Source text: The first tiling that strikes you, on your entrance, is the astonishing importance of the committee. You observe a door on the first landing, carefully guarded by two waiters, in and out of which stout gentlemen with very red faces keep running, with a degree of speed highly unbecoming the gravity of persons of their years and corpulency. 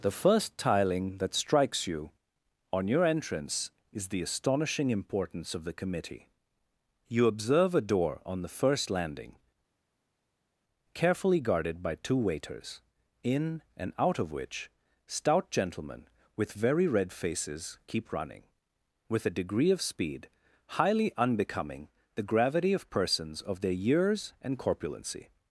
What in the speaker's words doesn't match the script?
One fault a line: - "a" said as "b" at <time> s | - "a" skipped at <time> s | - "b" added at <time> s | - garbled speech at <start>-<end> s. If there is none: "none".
none